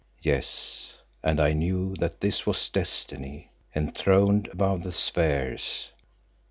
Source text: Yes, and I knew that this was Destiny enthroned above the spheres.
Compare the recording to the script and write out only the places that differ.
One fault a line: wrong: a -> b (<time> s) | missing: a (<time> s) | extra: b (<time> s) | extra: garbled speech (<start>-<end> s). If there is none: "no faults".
no faults